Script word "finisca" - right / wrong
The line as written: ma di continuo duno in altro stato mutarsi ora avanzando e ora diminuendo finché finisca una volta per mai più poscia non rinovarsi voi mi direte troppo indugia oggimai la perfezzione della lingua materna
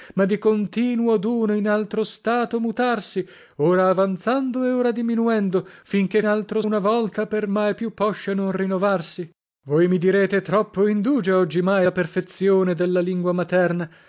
wrong